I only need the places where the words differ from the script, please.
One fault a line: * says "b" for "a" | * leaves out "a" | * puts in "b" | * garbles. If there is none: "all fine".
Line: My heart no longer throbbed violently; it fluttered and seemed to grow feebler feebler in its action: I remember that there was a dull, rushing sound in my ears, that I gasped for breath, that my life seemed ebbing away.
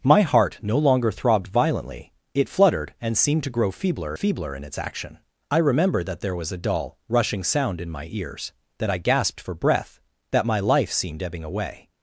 all fine